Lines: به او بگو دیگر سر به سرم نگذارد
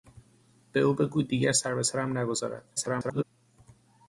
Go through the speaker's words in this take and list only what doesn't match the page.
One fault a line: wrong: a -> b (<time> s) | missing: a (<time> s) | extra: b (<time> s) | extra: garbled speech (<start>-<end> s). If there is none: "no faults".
extra: garbled speech (2.8-3.2 s)